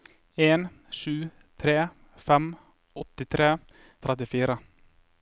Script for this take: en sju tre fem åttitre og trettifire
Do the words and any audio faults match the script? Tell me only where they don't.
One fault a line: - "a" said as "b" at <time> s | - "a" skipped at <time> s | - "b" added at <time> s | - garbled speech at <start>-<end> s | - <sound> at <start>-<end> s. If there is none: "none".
none